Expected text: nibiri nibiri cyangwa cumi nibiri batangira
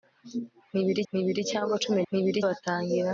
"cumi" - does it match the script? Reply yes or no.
yes